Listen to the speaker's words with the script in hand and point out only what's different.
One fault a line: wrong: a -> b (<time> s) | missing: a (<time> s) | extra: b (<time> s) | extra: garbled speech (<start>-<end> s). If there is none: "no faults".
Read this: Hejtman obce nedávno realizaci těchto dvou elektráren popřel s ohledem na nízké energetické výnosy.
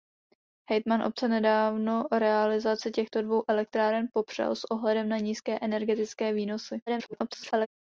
extra: garbled speech (6.9-7.7 s)